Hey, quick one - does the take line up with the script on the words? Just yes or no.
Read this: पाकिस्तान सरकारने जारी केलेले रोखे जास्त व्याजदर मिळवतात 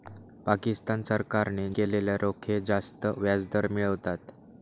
no